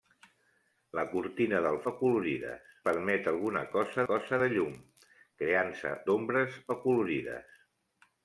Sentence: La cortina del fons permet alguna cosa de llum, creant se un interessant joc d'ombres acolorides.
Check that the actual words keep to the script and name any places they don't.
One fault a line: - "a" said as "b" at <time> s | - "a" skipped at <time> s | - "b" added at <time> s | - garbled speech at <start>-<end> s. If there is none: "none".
- "fons" said as "acolorides" at 1.9 s
- "cosa" added at 4.1 s
- "un interessant joc" skipped at 5.9 s